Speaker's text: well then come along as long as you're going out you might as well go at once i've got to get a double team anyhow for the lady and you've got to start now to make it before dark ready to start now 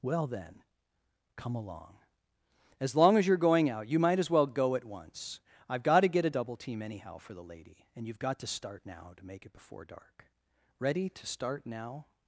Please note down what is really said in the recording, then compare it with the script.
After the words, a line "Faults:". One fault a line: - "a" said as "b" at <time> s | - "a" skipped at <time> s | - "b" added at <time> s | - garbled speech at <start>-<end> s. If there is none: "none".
well then come along as long as you're going out you might as well go at once i've got to get a double team anyhow for the lady and you've got to start now to make it before dark ready to start now
Faults:
none